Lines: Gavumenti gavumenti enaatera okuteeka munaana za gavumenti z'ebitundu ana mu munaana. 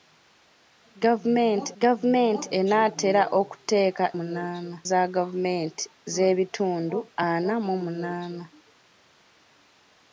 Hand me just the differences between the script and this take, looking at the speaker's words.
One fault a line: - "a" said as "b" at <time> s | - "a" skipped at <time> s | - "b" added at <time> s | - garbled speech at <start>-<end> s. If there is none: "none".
none